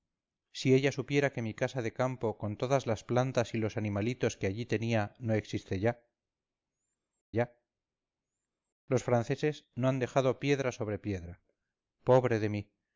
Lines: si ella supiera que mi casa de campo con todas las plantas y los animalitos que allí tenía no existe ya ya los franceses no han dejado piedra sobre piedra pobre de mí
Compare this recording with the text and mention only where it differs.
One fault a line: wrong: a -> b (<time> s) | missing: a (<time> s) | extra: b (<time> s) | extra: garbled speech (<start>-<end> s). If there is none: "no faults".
no faults